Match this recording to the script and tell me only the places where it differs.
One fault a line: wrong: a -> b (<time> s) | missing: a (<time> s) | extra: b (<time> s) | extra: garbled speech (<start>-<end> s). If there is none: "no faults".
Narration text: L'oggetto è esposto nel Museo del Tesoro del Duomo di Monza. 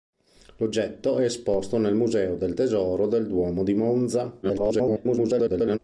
extra: garbled speech (4.4-5.8 s)